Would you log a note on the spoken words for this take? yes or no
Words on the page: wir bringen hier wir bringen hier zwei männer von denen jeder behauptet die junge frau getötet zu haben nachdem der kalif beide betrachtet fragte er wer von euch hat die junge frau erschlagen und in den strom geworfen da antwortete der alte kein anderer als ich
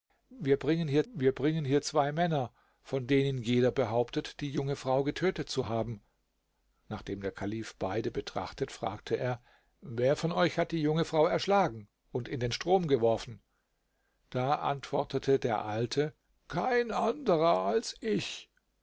no